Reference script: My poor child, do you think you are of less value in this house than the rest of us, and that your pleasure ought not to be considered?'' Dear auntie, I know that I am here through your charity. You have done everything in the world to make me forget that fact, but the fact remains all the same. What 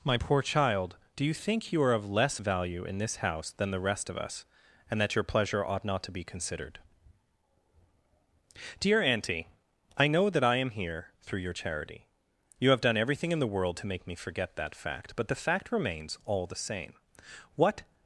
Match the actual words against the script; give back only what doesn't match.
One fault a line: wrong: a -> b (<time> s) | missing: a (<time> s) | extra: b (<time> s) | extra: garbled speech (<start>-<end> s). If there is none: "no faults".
no faults